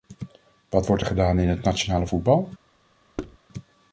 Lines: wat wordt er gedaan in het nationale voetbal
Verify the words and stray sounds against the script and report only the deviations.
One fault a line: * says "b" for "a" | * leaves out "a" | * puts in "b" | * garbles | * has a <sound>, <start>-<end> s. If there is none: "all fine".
* has a thud, 3.2-3.4 s